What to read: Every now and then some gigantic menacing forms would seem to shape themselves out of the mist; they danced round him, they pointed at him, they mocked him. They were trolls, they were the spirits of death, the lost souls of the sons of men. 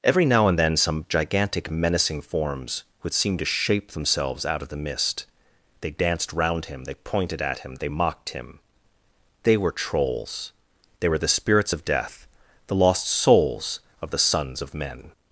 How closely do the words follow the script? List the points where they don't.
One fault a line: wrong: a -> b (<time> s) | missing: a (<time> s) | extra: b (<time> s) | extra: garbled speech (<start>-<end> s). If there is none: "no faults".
no faults